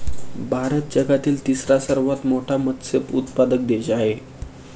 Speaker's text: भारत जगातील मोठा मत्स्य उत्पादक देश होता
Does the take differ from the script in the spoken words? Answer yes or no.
yes